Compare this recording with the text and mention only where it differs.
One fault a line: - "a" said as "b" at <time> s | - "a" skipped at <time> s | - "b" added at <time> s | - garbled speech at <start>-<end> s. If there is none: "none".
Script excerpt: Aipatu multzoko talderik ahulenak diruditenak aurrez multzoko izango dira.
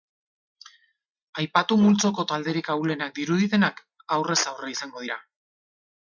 - "multzoko" said as "aurre" at 4.5 s